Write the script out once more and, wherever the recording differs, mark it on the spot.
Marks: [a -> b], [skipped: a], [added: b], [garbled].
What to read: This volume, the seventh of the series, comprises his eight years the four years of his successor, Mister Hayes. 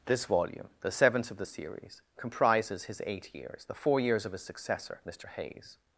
This volume, the seventh of the series, comprises his eight years the four years of his successor, Mister Hayes.